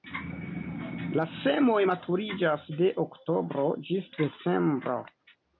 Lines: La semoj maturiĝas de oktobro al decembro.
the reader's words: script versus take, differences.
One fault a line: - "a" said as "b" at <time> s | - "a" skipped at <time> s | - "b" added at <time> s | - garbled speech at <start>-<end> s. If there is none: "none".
- "al" said as "ĝis" at 3.9 s